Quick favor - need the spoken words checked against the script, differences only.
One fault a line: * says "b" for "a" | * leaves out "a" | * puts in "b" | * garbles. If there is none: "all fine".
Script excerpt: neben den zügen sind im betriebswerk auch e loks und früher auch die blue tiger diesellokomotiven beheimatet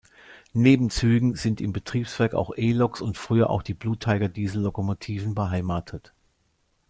* leaves out "den"